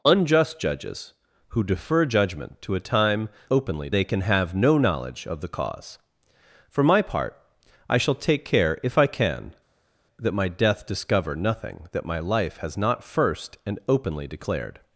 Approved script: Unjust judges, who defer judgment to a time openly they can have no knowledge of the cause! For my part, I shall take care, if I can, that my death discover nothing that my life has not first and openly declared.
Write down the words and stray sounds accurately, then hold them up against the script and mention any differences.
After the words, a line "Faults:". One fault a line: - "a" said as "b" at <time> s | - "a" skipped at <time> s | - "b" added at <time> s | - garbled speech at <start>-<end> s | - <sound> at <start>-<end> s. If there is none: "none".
Unjust judges, who defer judgment to a time openly they can have no knowledge of the cause! For my part, I shall take care, if I can, that my death discover nothing that my life has not first and openly declared.
Faults:
none